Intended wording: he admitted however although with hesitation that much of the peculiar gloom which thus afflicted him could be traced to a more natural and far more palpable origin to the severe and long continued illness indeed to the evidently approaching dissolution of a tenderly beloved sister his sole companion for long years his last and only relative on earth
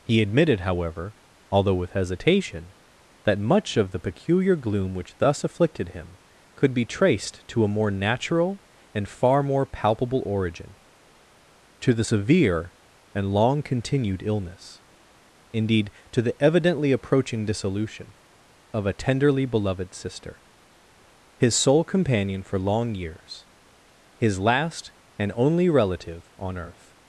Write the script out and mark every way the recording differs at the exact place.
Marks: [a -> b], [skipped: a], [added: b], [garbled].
he admitted however although with hesitation that much of the peculiar gloom which thus afflicted him could be traced to a more natural and far more palpable origin to the severe and long continued illness indeed to the evidently approaching dissolution of a tenderly beloved sister his sole companion for long years his last and only relative on earth